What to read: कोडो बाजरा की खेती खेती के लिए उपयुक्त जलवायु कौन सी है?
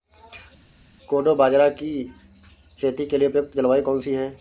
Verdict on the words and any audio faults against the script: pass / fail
fail